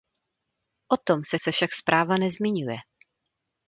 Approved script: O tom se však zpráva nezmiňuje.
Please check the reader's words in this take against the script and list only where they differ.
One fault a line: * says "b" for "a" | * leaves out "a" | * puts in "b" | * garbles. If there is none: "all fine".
* puts in "se"